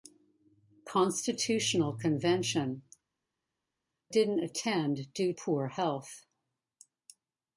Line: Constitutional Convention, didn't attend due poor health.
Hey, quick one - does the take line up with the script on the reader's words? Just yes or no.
yes